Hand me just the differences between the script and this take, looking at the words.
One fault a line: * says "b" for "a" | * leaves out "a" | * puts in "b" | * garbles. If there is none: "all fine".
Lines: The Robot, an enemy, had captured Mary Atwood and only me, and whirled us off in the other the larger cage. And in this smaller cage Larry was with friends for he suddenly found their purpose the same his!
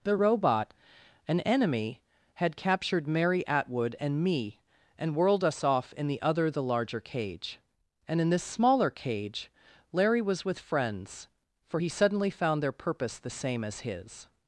* leaves out "only"
* puts in "as"